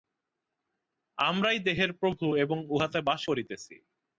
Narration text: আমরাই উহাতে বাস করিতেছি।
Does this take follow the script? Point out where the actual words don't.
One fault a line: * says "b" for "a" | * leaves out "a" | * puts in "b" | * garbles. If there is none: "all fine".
* puts in "দেহের প্রভু এবং"